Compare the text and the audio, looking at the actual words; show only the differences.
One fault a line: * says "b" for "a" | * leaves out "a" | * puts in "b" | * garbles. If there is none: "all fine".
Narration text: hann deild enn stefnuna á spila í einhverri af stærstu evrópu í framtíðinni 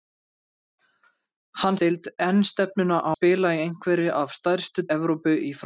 all fine